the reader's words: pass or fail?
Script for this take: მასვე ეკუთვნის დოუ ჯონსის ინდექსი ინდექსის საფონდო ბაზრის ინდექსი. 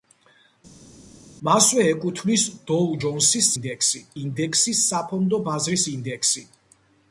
pass